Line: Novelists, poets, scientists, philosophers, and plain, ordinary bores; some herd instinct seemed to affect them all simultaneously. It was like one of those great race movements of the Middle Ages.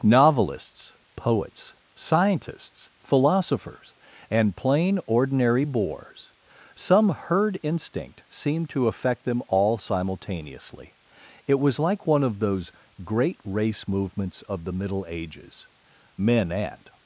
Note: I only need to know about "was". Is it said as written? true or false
true